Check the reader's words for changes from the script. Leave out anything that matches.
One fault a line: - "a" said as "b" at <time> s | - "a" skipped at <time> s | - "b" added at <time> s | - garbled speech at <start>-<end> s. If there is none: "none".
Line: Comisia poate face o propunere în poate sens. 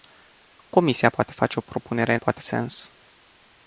none